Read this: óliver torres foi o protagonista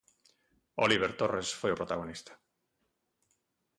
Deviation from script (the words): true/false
false